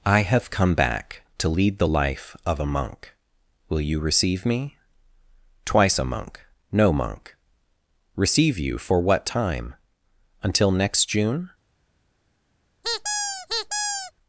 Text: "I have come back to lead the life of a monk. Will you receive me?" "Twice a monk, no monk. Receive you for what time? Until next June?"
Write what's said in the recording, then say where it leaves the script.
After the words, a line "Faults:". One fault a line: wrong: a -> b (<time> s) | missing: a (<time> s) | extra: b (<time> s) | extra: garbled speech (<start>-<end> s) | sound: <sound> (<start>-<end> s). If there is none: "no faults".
"I have come back to lead the life of a monk. Will you receive me?" "Twice a monk, no monk. Receive you for what time? Until next June?"
Faults:
sound: squeak (12.8-14.1 s)